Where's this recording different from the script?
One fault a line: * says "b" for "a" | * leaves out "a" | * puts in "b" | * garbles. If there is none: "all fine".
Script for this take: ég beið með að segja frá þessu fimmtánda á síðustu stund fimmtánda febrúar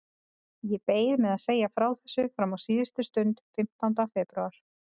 * says "fram" for "fimmtánda"